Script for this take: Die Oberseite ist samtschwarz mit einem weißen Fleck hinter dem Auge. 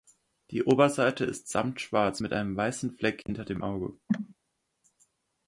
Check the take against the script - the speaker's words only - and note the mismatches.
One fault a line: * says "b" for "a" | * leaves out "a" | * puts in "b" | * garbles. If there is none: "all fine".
all fine